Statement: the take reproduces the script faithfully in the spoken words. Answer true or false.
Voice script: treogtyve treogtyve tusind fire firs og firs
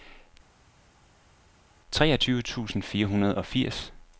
false